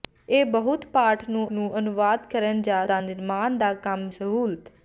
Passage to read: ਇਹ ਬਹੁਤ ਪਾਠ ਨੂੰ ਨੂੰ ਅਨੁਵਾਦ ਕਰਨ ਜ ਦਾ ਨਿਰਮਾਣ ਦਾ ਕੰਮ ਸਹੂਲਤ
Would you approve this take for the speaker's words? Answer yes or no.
yes